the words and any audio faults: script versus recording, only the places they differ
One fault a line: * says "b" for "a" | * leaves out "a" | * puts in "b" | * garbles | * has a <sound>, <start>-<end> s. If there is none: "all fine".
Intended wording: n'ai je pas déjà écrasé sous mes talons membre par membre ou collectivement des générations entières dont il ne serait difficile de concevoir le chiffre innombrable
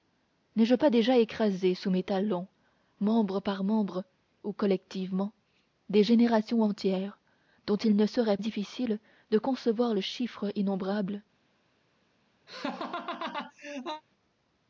* has a laugh, 12.5-14.0 s